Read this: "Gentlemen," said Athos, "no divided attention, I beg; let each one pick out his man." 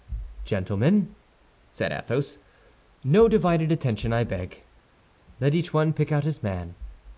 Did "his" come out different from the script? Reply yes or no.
no